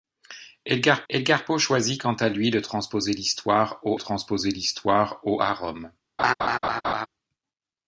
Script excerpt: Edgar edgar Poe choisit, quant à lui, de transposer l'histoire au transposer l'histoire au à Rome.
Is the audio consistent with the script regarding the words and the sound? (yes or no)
no